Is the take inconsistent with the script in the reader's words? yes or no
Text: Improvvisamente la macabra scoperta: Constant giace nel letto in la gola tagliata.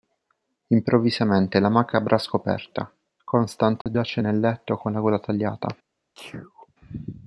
yes